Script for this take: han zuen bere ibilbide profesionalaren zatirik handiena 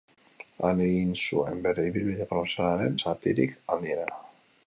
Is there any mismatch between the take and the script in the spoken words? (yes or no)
yes